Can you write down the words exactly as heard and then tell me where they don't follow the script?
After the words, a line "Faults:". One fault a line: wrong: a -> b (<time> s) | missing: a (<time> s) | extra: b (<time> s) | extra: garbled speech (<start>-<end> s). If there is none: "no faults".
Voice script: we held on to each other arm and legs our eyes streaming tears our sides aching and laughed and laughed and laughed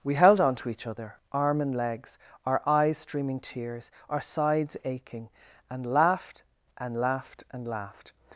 we held on to each other arm and legs our eyes streaming tears our sides aching and laughed and laughed and laughed
Faults:
no faults